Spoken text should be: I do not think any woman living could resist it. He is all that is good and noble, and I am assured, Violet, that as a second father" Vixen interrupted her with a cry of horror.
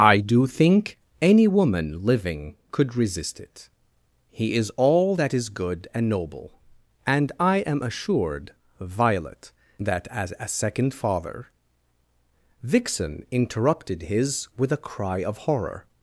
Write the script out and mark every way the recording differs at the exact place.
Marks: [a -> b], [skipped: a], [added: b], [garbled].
I do [skipped: not] think any woman living could resist it. He is all that is good and noble, and I am assured, Violet, that as a second father" Vixen interrupted [her -> his] with a cry of horror.